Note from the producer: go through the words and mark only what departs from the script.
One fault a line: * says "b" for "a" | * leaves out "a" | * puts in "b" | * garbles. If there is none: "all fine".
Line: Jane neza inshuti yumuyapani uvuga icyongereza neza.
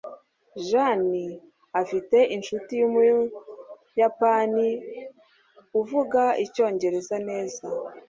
* says "afite" for "neza"